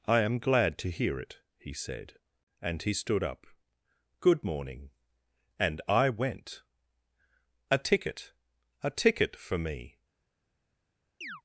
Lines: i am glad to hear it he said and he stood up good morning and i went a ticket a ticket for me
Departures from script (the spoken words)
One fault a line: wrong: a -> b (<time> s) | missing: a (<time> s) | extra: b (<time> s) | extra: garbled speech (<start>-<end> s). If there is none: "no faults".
no faults